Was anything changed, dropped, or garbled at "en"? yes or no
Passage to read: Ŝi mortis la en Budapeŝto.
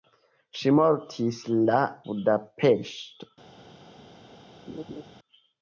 yes